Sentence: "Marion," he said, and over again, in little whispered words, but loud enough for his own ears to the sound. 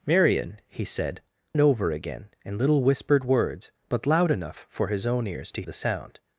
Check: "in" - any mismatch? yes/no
no